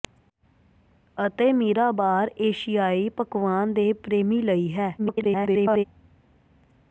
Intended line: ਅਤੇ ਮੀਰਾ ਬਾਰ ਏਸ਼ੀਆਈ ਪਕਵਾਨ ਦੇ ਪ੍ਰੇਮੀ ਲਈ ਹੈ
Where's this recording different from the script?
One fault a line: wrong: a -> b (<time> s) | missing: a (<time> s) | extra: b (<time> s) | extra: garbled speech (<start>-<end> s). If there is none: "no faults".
extra: garbled speech (5.0-5.8 s)